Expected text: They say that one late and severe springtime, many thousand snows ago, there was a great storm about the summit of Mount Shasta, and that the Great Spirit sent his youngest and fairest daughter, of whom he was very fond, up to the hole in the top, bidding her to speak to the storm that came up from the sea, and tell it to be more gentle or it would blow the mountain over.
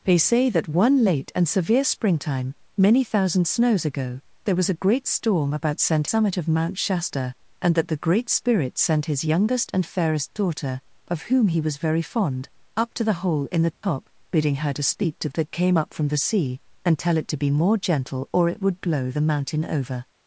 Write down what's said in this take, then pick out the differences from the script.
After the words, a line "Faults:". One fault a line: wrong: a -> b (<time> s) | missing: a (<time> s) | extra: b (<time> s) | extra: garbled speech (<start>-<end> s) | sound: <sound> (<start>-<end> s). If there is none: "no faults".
They say that one late and severe springtime, many thousand snows ago, there was a great storm about sent summit of Mount Shasta, and that the Great Spirit sent his youngest and fairest daughter, of whom he was very fond, up to the hole in the top, bidding her to speak to that came up from the sea, and tell it to be more gentle or it would blow the mountain over.
Faults:
wrong: the -> sent (5.8 s)
sound: dropout (13.7-13.8 s)
missing: the storm (15.3 s)